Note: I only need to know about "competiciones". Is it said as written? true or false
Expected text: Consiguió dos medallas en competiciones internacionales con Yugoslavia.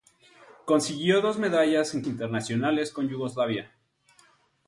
false